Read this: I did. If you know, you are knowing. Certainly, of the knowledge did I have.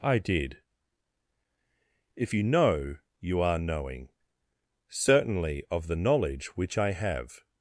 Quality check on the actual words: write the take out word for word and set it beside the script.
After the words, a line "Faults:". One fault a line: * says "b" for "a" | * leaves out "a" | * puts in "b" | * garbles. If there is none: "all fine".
I did. If you know, you are knowing. Certainly, of the knowledge which I have.
Faults:
* says "which" for "did"